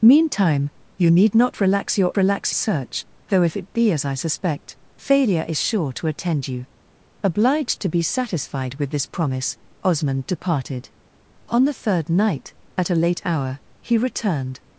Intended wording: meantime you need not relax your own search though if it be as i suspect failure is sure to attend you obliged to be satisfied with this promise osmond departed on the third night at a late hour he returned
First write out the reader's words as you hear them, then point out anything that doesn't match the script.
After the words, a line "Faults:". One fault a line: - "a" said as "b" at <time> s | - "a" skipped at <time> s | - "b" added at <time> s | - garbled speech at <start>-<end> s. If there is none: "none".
meantime you need not relax your relax search though if it be as i suspect failure is sure to attend you obliged to be satisfied with this promise osmond departed on the third night at a late hour he returned
Faults:
- "own" said as "relax" at 2.2 s